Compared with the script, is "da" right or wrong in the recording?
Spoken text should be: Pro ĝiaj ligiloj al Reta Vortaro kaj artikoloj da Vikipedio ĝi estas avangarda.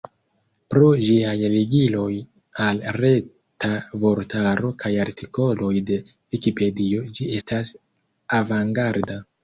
wrong